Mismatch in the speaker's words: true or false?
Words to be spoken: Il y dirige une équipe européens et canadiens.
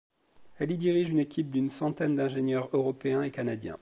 true